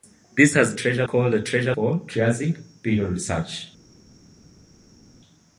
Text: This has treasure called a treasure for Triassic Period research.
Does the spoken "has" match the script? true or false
true